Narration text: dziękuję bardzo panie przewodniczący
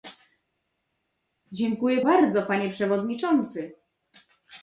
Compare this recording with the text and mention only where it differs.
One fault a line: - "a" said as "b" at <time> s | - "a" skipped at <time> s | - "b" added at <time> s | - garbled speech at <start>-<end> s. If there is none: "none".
none